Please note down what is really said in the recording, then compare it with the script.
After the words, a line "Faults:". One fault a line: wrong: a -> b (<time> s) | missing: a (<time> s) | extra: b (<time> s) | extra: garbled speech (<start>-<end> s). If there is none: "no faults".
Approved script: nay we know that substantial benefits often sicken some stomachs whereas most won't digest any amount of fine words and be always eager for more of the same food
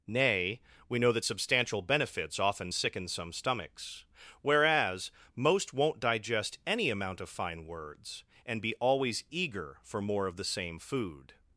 nay we know that substantial benefits often sicken some stomachs whereas most won't digest any amount of fine words and be always eager for more of the same food
Faults:
no faults